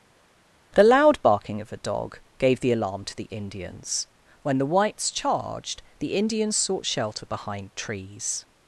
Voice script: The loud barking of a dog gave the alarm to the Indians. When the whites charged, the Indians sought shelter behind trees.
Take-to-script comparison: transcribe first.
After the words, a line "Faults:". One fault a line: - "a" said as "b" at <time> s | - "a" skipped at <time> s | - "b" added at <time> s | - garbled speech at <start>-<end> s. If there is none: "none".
The loud barking of a dog gave the alarm to the Indians. When the whites charged, the Indians sought shelter behind trees.
Faults:
none